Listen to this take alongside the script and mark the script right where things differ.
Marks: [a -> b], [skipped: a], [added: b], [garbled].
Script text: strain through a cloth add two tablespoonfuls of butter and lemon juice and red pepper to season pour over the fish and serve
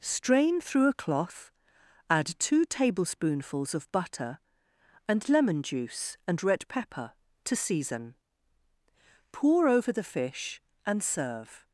strain through a cloth add two tablespoonfuls of butter and lemon juice and red pepper to season pour over the fish and serve